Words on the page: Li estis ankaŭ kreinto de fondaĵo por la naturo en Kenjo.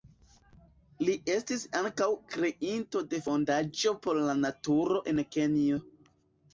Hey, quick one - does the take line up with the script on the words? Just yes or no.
yes